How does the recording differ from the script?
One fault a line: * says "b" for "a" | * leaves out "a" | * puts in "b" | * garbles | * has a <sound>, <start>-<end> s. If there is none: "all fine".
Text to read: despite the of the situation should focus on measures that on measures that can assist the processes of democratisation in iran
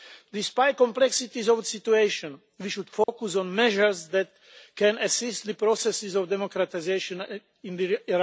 * puts in "complexities"
* puts in "we"
* has a dropout, 3.0-3.1 s
* leaves out "on measures that"